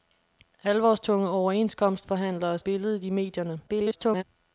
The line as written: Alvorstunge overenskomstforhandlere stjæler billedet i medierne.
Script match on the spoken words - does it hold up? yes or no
no